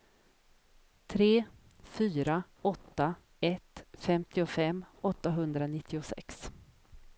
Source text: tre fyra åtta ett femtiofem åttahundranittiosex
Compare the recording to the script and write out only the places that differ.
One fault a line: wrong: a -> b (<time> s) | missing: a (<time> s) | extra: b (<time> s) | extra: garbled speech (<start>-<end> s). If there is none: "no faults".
no faults